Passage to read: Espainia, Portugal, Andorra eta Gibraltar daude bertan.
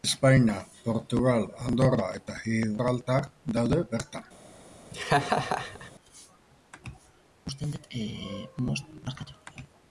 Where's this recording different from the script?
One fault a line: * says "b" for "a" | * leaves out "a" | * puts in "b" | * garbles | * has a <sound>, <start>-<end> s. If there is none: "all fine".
* has a laugh, 4.9-5.9 s